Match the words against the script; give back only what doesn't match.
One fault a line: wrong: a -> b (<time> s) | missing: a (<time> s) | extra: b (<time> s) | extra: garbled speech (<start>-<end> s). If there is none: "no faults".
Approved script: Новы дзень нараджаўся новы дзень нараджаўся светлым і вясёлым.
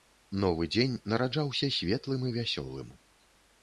missing: новы дзень нараджаўся (1.7 s)